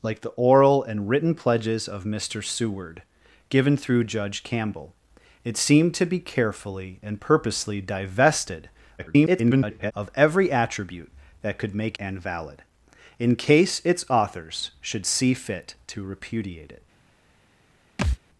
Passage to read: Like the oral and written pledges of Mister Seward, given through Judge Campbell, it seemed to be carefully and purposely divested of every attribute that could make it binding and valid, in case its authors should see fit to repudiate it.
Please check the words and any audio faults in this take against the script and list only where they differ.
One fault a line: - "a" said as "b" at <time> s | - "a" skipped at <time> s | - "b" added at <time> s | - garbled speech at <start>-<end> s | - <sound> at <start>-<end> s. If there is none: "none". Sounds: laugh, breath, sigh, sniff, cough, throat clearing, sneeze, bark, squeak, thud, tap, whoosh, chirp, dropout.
- garbled speech at 9.0-9.9 s
- "it binding" skipped at 12.0 s
- thud at 18.0-18.2 s